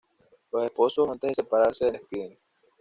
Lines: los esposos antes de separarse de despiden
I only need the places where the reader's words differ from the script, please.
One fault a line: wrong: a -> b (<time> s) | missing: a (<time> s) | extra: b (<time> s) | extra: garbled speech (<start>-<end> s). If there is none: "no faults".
no faults